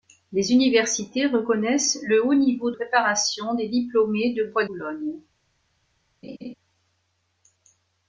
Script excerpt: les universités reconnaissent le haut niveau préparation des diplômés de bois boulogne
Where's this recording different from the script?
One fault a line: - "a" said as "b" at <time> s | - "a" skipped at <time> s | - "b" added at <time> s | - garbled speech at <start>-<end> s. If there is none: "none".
none